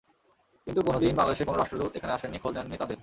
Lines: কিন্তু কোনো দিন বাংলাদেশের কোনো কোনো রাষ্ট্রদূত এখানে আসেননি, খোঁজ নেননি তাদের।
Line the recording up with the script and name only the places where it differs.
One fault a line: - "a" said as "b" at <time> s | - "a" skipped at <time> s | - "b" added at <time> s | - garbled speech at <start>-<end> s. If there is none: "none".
- "কোনো" skipped at 1.6 s